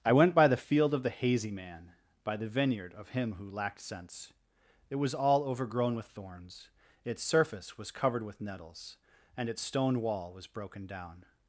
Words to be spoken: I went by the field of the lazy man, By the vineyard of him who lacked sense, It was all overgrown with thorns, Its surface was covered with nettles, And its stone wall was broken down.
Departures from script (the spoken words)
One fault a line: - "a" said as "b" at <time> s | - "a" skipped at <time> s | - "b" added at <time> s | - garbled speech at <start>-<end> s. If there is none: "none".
- "lazy" said as "hazy" at 1.1 s